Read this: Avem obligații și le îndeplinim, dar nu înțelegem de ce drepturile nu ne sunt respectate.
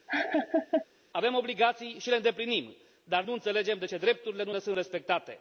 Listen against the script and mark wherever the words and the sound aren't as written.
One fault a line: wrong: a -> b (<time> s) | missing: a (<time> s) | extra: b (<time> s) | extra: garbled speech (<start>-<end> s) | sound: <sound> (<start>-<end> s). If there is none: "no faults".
sound: laugh (0.1-0.9 s)